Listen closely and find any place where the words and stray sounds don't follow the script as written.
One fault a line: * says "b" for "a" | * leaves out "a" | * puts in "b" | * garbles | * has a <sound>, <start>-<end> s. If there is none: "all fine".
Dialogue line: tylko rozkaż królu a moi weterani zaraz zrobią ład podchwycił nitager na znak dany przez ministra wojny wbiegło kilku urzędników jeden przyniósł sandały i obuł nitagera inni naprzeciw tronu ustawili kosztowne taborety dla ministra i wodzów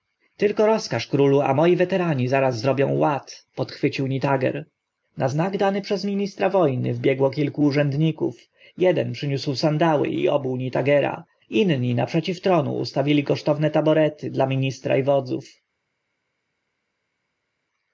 all fine